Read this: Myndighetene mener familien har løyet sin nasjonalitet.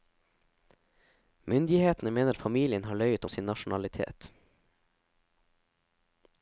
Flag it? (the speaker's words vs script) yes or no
no